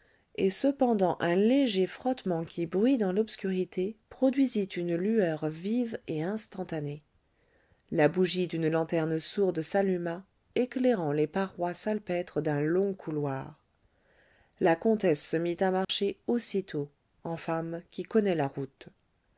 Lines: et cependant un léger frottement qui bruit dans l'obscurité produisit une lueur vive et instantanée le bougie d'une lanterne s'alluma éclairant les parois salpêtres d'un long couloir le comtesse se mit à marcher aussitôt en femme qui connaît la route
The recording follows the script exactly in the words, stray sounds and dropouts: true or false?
false